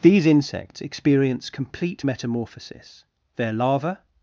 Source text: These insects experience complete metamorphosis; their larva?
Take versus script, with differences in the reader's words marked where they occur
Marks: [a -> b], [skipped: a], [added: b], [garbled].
These insects experience complete metamorphosis; their larva?